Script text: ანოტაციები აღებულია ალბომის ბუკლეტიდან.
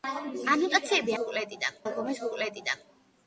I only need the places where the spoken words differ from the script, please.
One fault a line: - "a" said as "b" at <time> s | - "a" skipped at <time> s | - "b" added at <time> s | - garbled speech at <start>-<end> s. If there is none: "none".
- "აღებულია" said as "ბუკლეტიდან" at 1.2 s